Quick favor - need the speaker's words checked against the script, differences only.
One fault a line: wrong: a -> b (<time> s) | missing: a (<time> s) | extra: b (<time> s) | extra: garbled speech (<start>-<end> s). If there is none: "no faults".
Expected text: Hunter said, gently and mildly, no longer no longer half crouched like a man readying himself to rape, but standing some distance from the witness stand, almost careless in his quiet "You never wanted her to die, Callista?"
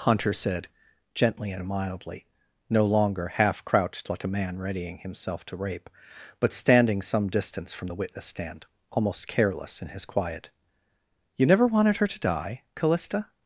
missing: no longer (3.3 s)